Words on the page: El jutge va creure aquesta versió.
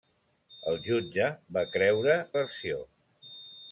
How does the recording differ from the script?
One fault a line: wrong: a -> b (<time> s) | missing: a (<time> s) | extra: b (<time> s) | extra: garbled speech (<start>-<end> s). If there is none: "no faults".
missing: aquesta (2.2 s)